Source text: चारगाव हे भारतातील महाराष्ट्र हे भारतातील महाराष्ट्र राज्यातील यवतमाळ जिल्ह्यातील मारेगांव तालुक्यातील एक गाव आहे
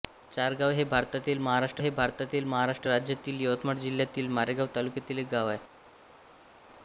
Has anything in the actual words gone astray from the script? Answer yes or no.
no